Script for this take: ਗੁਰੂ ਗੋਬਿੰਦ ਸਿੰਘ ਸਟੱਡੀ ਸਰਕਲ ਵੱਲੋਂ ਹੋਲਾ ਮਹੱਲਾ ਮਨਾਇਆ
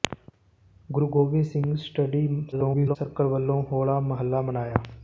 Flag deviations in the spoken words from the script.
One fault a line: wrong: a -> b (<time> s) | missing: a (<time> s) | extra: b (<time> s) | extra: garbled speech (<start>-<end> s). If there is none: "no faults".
extra: garbled speech (2.5-3.0 s)